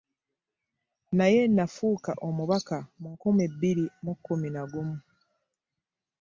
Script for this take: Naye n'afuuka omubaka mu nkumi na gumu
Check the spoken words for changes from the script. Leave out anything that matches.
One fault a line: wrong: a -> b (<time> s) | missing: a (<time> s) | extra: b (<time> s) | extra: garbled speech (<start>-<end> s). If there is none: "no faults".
extra: bbiri mu kkumi (3.5 s)